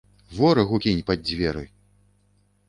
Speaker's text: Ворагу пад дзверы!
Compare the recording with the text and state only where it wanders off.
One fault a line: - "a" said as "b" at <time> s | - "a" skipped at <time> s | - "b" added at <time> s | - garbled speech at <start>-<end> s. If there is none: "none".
- "кінь" added at 0.8 s